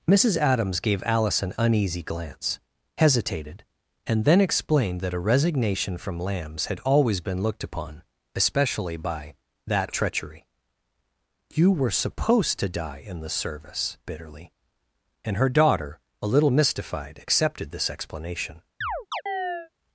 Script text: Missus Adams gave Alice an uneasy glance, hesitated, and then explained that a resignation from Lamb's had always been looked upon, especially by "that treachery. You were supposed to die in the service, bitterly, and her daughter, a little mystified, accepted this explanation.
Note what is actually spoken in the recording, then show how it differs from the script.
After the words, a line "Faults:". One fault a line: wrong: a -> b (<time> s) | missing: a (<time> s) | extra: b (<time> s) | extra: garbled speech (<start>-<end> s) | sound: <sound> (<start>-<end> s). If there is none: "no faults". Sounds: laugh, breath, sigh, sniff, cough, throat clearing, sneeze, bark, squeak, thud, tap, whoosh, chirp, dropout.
Missus Adams gave Alice an uneasy glance, hesitated, and then explained that a resignation from Lamb's had always been looked upon, especially by "that treachery. You were supposed to die in the service, bitterly, and her daughter, a little mystified, accepted this explanation.
Faults:
sound: chirp (18.8-19.7 s)